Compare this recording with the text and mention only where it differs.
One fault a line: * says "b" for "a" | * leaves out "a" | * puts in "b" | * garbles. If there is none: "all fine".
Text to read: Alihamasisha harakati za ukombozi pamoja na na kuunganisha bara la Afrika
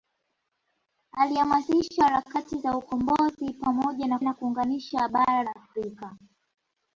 all fine